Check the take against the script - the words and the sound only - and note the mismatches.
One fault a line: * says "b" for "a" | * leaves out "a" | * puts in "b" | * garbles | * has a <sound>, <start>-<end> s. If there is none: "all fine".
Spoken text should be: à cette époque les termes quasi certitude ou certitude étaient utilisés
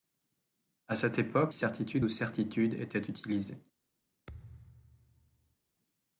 * leaves out "les termes quasi"
* has a thud, 4.3-5.6 s